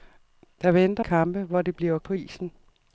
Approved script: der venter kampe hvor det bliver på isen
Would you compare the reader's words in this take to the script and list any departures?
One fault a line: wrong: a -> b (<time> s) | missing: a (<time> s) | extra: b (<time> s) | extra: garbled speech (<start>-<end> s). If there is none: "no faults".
no faults